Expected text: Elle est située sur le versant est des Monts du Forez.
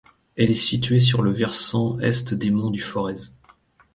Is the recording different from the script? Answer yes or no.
no